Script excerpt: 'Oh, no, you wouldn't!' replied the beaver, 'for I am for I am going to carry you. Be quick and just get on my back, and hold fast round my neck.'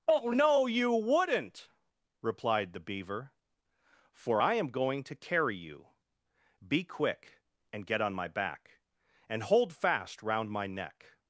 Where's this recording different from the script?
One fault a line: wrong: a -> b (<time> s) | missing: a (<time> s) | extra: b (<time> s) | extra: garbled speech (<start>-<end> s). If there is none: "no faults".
missing: for I am (4.7 s)
missing: just (7.9 s)